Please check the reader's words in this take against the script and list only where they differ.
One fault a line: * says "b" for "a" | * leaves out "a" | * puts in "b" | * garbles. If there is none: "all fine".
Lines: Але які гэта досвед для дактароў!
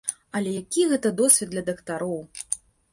all fine